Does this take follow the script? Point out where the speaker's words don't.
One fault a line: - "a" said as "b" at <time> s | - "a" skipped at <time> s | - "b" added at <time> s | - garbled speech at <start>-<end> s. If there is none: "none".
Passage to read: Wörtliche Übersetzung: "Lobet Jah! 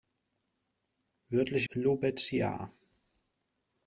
- "Übersetzung" skipped at 1.7 s